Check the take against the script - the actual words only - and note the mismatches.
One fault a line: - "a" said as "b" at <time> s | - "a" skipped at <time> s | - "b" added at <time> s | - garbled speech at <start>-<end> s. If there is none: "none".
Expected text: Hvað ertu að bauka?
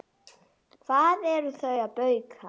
none